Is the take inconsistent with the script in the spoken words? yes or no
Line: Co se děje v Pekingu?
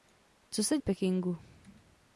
yes